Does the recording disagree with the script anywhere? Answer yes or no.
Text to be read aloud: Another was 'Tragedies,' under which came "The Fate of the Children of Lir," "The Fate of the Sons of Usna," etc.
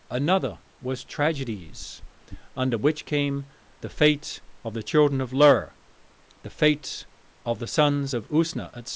no